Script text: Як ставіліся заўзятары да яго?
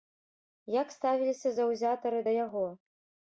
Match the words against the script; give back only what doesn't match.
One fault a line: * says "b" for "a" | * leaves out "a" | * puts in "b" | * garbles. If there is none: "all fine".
all fine